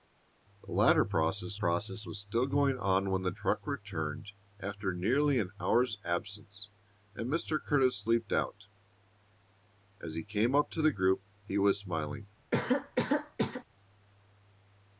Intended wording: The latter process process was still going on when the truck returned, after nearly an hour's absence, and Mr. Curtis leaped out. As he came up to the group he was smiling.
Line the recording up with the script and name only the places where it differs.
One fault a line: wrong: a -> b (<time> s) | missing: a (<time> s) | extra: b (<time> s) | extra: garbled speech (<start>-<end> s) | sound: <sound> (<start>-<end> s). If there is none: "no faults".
sound: cough (12.5-13.6 s)